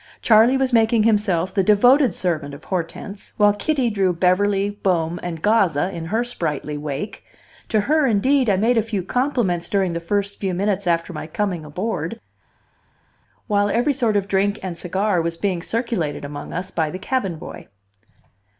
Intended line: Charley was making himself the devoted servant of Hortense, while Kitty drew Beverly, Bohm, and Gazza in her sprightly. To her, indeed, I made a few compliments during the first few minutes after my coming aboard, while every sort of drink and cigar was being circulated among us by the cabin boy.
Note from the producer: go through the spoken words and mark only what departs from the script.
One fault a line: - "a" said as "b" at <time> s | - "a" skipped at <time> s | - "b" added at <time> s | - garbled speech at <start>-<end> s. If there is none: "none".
- "wake" added at 6.8 s